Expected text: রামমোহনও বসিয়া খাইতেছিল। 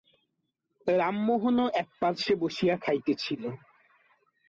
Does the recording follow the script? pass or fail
fail